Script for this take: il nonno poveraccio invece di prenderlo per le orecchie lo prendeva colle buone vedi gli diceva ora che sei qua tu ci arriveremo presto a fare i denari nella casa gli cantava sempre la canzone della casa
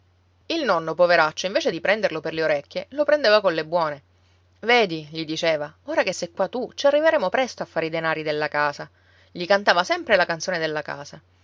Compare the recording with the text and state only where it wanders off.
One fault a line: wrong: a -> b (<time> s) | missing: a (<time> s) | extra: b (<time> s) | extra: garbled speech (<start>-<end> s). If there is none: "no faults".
wrong: nella -> della (8.2 s)